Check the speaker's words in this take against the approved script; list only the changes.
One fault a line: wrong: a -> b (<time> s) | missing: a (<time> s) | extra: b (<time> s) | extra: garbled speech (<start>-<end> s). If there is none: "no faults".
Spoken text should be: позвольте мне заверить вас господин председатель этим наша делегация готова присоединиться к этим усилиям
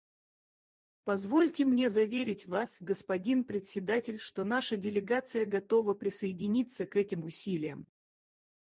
wrong: этим -> что (4.2 s)